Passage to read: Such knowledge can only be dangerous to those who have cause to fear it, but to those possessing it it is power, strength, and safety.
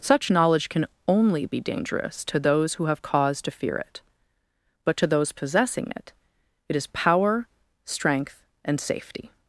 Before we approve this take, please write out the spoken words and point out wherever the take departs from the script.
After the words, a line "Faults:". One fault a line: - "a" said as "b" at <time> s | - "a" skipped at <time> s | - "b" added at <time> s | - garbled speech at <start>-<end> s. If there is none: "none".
Such knowledge can only be dangerous to those who have cause to fear it, but to those possessing it it is power, strength, and safety.
Faults:
none